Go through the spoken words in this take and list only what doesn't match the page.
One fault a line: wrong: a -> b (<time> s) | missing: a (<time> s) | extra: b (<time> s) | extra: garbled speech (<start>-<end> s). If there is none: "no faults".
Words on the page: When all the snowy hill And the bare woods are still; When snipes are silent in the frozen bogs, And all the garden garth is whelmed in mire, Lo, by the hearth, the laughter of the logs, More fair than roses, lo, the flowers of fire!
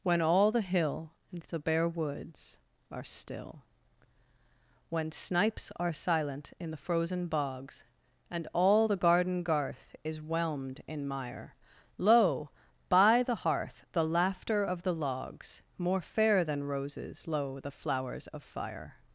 missing: snowy (0.6 s)